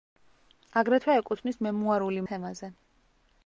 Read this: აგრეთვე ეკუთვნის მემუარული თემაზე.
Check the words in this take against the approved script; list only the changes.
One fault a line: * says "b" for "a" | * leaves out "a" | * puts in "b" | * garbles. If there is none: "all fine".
all fine